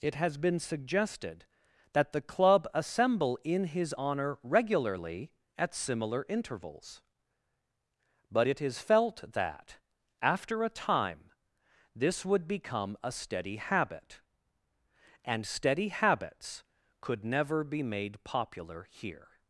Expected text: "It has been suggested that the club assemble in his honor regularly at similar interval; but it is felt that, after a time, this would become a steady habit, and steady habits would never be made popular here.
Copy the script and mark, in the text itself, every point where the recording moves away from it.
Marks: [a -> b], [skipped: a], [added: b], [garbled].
"It has been suggested that the club assemble in his honor regularly at similar [interval; -> intervals] but it is felt that, after a time, this would become a steady habit, and steady habits [would -> could] never be made popular here.